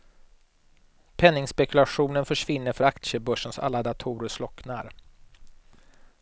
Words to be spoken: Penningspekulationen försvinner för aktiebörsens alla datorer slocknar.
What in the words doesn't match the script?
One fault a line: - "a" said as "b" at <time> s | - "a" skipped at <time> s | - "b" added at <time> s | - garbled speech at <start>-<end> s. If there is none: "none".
none